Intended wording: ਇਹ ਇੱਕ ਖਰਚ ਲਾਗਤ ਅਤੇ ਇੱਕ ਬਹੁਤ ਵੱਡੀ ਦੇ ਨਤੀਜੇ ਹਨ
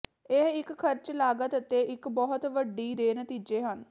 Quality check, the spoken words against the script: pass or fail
pass